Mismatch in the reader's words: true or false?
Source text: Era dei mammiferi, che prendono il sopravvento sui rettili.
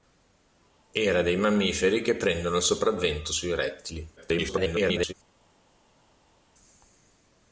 true